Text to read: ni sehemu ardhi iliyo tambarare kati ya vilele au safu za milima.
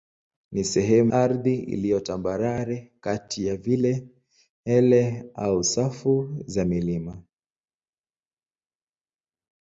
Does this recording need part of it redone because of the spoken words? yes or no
no